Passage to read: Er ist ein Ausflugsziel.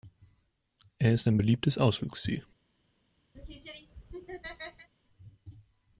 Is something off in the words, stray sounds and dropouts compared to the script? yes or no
yes